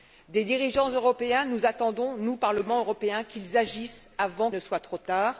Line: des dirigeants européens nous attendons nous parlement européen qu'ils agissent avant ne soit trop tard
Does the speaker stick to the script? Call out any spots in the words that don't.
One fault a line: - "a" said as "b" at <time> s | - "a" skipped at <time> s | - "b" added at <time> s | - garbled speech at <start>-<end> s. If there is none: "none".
none